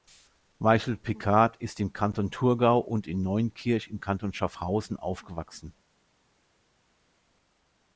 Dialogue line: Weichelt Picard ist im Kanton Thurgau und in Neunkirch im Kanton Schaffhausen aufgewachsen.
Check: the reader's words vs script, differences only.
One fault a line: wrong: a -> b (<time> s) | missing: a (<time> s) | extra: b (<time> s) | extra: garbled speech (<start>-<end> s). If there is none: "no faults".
no faults